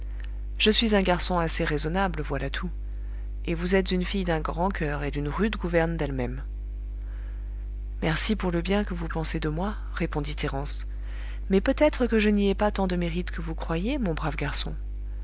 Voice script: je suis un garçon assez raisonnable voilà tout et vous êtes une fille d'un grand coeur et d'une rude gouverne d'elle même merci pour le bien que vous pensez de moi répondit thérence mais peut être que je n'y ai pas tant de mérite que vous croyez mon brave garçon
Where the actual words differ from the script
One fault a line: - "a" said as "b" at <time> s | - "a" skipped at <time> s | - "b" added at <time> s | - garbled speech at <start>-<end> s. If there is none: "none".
none